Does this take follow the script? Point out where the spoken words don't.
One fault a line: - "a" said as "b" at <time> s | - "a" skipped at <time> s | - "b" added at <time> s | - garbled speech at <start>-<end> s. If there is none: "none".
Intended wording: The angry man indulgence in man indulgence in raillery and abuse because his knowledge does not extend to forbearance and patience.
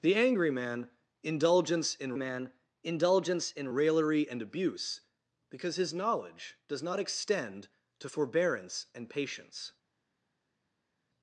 none